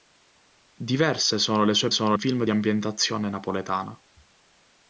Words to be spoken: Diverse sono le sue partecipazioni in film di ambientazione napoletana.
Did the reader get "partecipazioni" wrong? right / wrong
wrong